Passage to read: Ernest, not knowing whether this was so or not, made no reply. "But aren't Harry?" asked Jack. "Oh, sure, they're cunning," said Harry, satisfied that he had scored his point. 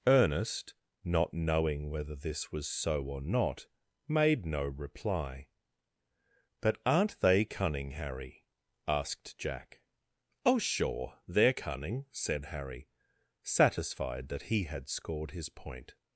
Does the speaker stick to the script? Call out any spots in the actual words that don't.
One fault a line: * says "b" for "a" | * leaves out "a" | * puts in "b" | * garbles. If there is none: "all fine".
* puts in "they cunning"